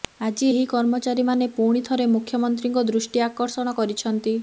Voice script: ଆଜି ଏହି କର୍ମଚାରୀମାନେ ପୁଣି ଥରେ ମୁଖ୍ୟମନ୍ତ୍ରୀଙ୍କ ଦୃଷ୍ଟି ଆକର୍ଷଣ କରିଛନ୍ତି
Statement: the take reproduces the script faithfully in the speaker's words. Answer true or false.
true